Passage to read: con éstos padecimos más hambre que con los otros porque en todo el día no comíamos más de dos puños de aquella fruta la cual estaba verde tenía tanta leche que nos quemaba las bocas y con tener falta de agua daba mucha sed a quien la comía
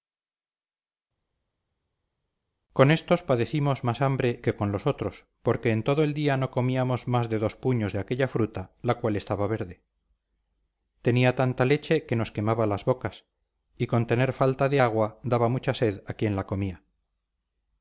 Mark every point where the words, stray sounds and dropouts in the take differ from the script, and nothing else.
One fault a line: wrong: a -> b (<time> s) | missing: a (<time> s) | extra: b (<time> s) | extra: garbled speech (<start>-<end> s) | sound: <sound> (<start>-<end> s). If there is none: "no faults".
no faults